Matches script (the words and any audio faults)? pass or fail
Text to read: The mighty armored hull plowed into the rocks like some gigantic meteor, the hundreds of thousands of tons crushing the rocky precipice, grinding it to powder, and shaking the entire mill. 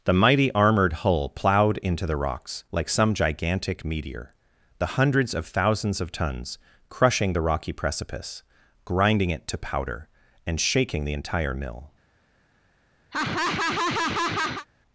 fail